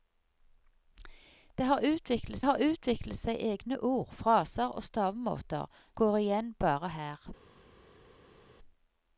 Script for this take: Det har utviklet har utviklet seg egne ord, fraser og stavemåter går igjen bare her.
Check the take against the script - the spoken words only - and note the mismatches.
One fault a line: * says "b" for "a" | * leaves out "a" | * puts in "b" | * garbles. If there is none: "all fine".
all fine